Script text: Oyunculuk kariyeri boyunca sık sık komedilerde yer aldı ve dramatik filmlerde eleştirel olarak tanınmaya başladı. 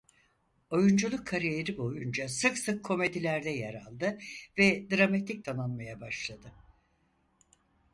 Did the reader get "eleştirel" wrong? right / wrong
wrong